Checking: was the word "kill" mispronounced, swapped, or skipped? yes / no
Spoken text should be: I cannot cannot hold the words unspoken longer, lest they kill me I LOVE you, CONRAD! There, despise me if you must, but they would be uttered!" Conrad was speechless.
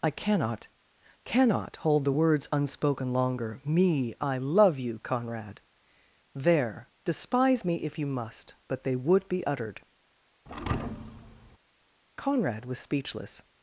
yes